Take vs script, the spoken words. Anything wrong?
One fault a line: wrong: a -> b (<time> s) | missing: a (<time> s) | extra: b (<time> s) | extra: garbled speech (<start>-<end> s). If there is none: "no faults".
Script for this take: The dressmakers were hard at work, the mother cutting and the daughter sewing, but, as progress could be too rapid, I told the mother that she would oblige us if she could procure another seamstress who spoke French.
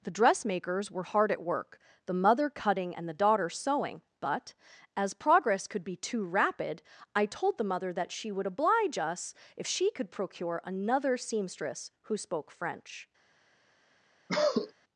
no faults